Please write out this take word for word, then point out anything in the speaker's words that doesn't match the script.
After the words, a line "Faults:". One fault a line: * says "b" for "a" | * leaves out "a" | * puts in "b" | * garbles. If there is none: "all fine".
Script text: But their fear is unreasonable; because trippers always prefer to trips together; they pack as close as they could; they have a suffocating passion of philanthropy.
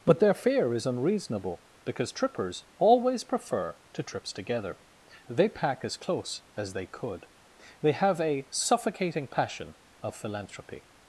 But their fear is unreasonable; because trippers always prefer to trips together; they pack as close as they could; they have a suffocating passion of philanthropy.
Faults:
all fine